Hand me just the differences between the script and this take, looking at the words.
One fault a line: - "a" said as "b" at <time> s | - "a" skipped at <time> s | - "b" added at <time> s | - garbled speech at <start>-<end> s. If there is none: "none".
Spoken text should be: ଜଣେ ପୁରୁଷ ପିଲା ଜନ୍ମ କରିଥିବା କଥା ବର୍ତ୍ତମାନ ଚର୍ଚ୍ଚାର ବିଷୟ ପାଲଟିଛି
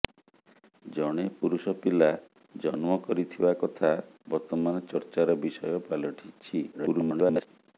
- garbled speech at 6.7-7.5 s